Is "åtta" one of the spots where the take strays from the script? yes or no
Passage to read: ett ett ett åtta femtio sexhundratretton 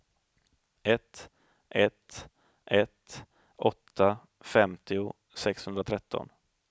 no